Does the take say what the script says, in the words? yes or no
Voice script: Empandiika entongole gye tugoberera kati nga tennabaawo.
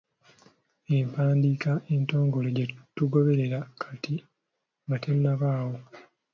yes